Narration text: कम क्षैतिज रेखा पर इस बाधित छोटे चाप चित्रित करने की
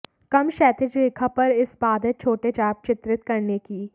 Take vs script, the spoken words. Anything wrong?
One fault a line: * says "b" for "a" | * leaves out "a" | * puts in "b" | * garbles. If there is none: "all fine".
all fine